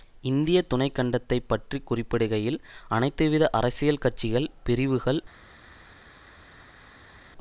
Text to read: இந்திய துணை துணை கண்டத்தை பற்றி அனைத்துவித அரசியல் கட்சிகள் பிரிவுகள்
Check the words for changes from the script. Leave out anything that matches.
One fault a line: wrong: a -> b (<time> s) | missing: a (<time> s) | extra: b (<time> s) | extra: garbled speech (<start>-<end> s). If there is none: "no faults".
missing: துணை (0.9 s)
extra: குறிப்பிடுகையில் (1.8 s)